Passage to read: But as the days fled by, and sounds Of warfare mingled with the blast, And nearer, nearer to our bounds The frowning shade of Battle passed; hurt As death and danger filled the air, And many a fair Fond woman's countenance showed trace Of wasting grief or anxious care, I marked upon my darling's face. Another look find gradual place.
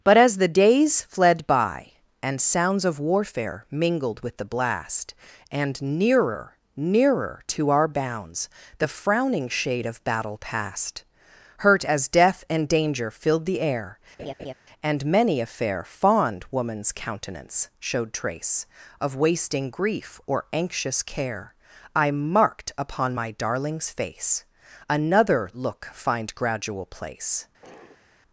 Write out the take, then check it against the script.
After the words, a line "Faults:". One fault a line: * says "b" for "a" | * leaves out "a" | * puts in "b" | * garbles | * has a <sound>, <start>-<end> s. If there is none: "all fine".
But as the days fled by, and sounds Of warfare mingled with the blast, And nearer, nearer to our bounds The frowning shade of Battle passed; hurt As death and danger filled the air, And many a fair Fond woman's countenance showed trace Of wasting grief or anxious care, I marked upon my darling's face. Another look find gradual place.
Faults:
* has a laugh, 14.2-14.5 s
* has a sigh, 27.6-28.1 s